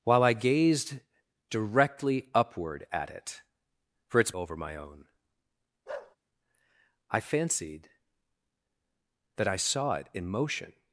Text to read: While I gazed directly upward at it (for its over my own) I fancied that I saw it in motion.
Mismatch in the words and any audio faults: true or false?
true